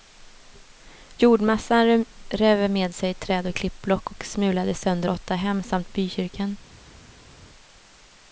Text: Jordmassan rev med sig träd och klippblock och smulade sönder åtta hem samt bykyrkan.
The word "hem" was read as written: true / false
true